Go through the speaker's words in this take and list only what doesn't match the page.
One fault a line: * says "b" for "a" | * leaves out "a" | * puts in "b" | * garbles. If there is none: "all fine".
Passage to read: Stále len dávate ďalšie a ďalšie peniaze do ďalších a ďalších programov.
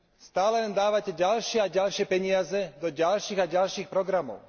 all fine